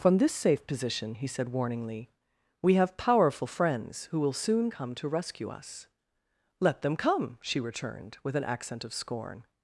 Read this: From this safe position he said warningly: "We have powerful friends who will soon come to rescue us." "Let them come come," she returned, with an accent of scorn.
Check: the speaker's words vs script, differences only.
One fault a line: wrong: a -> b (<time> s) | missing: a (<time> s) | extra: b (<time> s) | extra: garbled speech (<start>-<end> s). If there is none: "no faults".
missing: come (7.4 s)